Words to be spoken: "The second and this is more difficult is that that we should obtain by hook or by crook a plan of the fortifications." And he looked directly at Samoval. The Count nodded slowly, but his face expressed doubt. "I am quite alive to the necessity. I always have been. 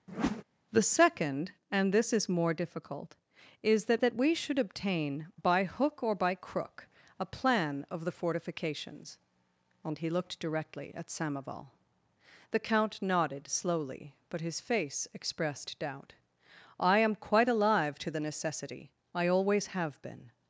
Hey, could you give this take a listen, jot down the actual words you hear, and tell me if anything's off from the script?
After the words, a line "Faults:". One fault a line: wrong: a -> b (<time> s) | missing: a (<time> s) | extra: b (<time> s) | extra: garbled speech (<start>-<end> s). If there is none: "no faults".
"The second and this is more difficult is that that we should obtain by hook or by crook a plan of the fortifications." And he looked directly at Samoval. The Count nodded slowly, but his face expressed doubt. "I am quite alive to the necessity. I always have been.
Faults:
no faults